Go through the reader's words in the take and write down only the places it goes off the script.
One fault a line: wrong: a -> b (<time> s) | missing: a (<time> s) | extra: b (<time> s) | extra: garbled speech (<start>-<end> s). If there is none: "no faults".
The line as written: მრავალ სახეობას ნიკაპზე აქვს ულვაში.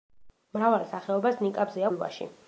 missing: აქვს (1.9 s)